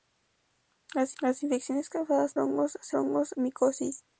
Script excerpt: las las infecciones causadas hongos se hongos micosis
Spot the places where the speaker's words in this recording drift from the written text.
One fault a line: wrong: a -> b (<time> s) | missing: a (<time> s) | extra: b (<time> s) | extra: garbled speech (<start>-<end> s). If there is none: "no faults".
no faults